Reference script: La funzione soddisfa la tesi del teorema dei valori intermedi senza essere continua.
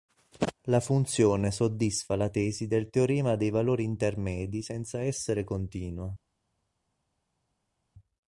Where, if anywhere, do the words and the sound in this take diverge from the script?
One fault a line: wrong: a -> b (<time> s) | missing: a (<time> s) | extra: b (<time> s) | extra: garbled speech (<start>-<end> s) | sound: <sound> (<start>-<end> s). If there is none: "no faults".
no faults